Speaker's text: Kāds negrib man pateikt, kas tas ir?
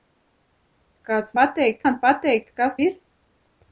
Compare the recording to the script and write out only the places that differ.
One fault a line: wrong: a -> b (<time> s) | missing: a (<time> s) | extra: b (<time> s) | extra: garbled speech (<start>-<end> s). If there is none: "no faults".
wrong: negrib -> pateikt (1.4 s)
missing: tas (2.8 s)